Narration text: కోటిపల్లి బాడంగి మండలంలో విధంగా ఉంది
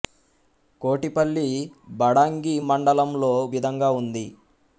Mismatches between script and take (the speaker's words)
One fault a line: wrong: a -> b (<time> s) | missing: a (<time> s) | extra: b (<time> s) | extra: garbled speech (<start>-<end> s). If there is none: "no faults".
no faults